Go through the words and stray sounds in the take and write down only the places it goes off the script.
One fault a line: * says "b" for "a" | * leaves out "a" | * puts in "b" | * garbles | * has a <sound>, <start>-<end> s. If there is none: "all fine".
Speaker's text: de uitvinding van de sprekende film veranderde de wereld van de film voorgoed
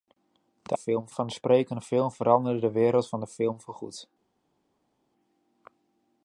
* says "film" for "uitvinding"